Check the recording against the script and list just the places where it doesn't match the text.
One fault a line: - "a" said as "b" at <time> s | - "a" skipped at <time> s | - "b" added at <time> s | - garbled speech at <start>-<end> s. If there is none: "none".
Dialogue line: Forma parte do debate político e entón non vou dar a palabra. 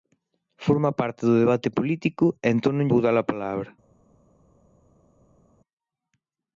none